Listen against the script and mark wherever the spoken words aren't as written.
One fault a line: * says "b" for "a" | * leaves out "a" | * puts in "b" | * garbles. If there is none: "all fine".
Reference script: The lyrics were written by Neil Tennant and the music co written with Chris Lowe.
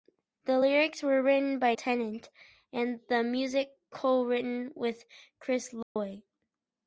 * leaves out "Neil"